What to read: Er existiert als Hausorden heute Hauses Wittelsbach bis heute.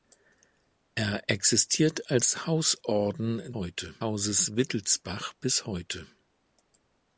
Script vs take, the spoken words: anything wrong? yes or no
no